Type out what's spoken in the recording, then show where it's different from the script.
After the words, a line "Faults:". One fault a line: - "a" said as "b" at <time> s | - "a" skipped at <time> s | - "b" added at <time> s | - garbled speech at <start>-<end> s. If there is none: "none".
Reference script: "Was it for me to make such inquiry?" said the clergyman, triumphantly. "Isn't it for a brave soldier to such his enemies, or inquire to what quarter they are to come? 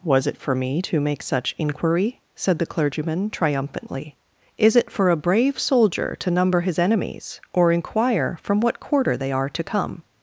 "Was it for me to make such inquiry?" said the clergyman, triumphantly. "Is it for a brave soldier to number his enemies, or inquire from what quarter they are to come?
Faults:
- "Isn't" said as "Is" at 4.6 s
- "such" said as "number" at 6.3 s
- "to" said as "from" at 8.4 s